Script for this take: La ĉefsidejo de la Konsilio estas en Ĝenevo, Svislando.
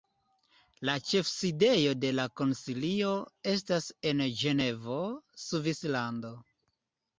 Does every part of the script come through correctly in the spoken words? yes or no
yes